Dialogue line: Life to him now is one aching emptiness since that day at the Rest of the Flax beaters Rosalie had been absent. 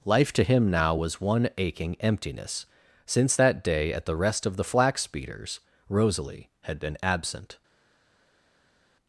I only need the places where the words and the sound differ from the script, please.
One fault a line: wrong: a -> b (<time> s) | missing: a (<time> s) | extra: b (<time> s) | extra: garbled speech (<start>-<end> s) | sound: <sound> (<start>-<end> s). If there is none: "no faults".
wrong: is -> was (0.9 s)